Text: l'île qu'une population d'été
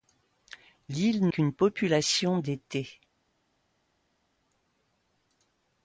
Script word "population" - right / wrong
right